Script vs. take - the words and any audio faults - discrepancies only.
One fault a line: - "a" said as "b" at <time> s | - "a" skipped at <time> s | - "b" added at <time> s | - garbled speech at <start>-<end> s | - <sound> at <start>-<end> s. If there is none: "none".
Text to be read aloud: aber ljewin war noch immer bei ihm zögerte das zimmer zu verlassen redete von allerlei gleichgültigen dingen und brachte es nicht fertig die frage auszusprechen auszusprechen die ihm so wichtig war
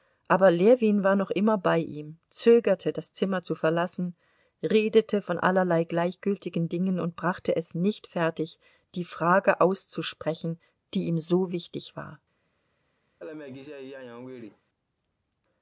- "auszusprechen" skipped at 10.6 s
- laugh at 13.2-14.6 s